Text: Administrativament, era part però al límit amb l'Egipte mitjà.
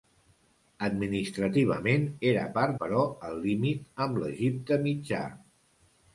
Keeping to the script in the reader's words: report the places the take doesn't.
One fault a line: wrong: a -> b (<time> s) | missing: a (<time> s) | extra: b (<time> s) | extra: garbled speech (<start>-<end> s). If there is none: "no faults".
no faults